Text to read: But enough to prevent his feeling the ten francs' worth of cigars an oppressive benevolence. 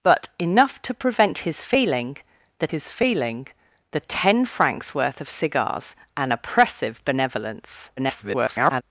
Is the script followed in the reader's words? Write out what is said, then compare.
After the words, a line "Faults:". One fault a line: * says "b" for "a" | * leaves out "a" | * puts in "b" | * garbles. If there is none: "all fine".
But enough to prevent his feeling the his feeling the ten francs' worth of cigars an oppressive benevolence. [garbled]
Faults:
* puts in "his feeling the"
* garbles